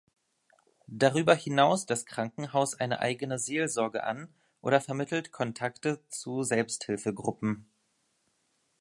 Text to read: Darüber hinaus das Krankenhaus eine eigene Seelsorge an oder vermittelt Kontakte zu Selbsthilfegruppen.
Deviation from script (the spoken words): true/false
false